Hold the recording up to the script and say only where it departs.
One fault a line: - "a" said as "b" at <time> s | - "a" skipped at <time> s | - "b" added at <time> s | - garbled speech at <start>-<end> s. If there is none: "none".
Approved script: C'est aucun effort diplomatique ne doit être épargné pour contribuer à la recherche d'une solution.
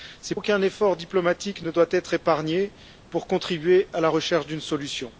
none